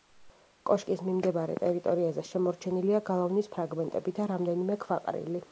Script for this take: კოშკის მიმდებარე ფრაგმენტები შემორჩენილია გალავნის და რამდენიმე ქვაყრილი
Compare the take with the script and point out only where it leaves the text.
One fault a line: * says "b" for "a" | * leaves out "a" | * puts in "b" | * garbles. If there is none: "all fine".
* says "ტერიტორიაზე" for "ფრაგმენტები"
* puts in "ფრაგმენტები"